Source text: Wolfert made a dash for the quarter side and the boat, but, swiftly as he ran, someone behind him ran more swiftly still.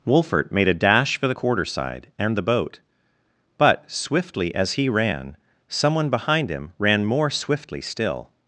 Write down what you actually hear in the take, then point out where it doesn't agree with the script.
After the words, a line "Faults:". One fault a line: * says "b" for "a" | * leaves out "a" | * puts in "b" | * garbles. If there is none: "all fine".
Wolfert made a dash for the quarter side and the boat, but, swiftly as he ran, someone behind him ran more swiftly still.
Faults:
all fine